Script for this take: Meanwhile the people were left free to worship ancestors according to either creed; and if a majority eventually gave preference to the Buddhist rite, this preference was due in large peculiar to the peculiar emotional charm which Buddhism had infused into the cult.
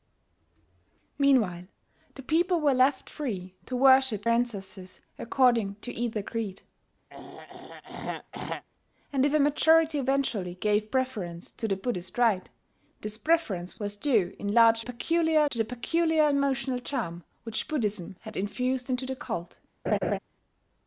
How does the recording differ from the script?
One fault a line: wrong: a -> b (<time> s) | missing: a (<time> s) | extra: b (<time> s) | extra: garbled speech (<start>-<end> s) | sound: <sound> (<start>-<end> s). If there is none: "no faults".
sound: throat clearing (7.1-8.6 s)
sound: laugh (19.9-20.2 s)